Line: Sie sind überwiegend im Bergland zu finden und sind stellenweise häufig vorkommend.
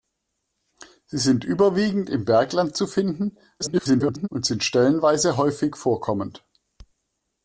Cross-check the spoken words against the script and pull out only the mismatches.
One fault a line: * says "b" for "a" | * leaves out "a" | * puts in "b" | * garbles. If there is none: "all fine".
* garbles